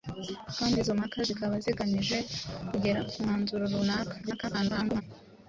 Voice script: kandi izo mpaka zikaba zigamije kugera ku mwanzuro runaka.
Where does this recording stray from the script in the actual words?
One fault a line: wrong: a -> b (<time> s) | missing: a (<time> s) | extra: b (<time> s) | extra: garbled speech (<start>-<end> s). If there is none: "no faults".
extra: garbled speech (4.2-5.0 s)